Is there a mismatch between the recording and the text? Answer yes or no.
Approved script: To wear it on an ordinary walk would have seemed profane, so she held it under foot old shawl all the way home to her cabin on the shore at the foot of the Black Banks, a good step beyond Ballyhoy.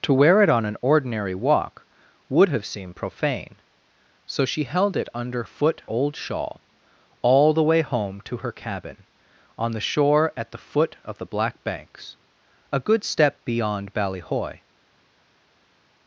no